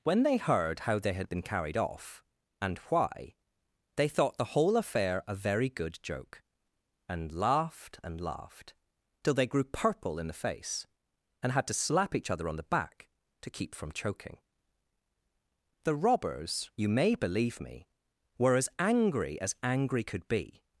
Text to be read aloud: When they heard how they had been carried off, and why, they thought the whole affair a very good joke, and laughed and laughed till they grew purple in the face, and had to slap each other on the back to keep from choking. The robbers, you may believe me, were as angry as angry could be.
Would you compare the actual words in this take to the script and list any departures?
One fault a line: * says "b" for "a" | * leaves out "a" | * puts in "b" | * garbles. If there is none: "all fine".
all fine